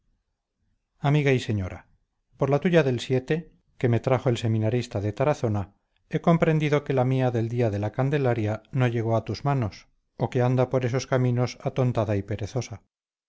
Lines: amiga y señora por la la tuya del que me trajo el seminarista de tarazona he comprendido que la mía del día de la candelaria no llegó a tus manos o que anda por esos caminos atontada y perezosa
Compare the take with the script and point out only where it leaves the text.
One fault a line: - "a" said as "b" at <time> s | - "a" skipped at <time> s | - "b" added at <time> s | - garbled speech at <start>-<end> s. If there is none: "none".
- "la" skipped at 2.6 s